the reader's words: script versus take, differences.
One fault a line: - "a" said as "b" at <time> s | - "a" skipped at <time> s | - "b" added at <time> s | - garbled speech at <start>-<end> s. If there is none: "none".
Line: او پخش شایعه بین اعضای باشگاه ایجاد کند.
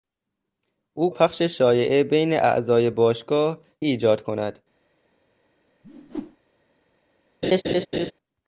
none